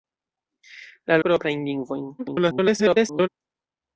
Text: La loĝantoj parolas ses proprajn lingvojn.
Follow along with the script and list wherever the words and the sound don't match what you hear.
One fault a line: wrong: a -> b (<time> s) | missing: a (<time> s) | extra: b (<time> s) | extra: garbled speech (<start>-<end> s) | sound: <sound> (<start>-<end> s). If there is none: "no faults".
missing: loĝantoj parolas ses (1.2 s)
extra: garbled speech (2.2-3.3 s)